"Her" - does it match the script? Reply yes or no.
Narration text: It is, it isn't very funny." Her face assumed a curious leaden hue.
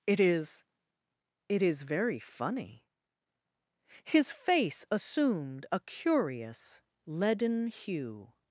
no